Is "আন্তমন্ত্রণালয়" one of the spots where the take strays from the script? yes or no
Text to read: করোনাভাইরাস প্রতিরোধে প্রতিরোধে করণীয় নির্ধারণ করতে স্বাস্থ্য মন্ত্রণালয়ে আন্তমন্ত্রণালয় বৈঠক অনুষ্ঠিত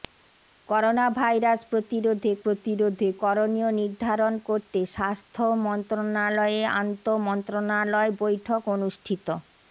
no